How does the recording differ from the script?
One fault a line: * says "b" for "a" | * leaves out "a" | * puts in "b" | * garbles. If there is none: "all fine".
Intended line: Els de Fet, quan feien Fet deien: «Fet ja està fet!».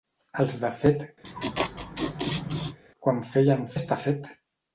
* leaves out "Fet deien Fet"